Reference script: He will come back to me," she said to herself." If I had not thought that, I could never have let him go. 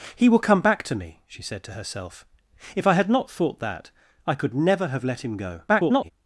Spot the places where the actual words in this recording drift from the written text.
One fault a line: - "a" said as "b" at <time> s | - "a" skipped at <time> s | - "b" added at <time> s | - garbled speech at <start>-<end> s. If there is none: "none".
- garbled speech at 5.7-6.1 s